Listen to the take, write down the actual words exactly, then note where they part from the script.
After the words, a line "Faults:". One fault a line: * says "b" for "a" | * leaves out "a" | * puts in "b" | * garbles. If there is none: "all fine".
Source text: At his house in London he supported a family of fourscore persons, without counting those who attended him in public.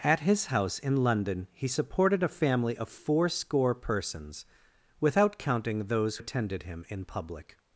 At his house in London he supported a family of fourscore persons, without counting those attended him in public.
Faults:
* leaves out "who"